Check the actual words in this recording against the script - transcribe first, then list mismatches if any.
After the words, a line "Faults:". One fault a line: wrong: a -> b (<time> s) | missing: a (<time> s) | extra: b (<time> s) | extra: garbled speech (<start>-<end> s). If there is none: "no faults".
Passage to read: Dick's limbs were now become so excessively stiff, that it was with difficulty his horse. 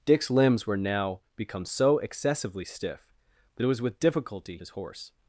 Dick's limbs were now become so excessively stiff, that it was with difficulty his horse.
Faults:
no faults